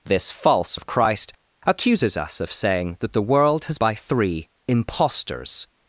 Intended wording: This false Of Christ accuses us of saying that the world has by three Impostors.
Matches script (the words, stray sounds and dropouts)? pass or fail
pass